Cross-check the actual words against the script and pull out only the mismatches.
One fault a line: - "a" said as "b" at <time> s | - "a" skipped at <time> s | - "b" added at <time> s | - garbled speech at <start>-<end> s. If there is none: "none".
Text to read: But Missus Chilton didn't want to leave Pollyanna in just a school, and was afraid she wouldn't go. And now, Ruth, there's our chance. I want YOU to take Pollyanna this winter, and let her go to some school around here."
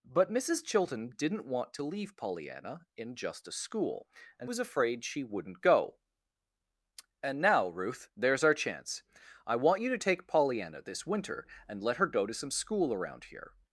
none